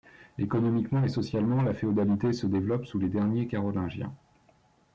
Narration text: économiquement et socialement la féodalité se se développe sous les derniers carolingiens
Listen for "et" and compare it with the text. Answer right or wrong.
right